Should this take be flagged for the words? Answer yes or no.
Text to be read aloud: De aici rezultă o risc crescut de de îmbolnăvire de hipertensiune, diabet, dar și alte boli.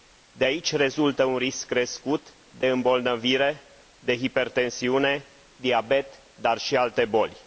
yes